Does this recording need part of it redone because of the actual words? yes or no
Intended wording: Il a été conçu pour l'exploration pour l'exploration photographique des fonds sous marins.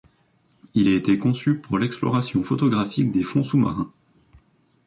yes